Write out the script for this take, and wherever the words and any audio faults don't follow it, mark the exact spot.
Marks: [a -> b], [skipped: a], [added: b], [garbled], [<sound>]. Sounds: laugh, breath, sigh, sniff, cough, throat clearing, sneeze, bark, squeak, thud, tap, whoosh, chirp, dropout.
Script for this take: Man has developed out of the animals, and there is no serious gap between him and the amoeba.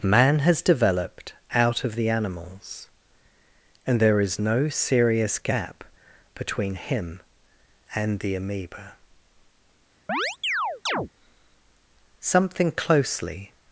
Man has developed out of the animals, and there is no serious gap between him and the amoeba. [chirp] [added: Something closely]